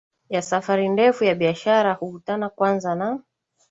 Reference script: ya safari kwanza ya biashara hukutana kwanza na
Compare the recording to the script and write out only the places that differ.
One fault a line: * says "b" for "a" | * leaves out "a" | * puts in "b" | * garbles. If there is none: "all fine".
* says "ndefu" for "kwanza"